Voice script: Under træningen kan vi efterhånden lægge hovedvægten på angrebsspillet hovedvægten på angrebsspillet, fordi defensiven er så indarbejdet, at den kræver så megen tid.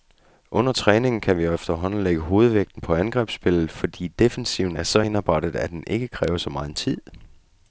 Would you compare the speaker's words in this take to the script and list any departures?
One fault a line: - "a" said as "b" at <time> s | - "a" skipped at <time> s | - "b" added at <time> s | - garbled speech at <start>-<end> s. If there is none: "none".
- "hovedvægten på angrebsspillet" skipped at 3.7 s
- "ikke" added at 5.9 s